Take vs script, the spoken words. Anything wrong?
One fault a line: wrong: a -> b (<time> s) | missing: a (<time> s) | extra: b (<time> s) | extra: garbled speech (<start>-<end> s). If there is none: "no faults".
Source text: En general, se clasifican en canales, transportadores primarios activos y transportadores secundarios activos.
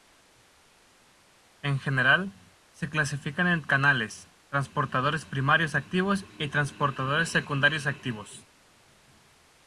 no faults